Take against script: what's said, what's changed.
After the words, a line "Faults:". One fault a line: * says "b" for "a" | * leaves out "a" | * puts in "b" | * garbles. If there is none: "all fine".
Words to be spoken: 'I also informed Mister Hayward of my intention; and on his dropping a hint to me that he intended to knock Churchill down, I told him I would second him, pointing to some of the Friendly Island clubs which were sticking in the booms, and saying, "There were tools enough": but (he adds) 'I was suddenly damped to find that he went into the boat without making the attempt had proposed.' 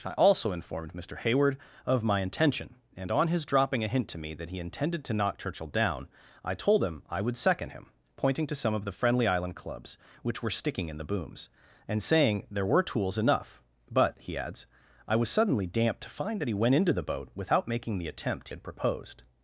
'I also informed Mister Hayward of my intention; and on his dropping a hint to me that he intended to knock Churchill down, I told him I would second him, pointing to some of the Friendly Island clubs which were sticking in the booms, and saying, "There were tools enough": but (he adds) 'I was suddenly damped to find that he went into the boat without making the attempt had proposed.'
Faults:
all fine